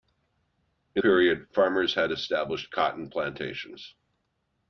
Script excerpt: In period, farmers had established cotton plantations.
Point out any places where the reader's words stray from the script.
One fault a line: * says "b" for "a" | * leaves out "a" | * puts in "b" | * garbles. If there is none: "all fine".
all fine